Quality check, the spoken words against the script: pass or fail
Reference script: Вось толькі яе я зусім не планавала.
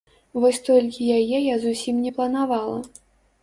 pass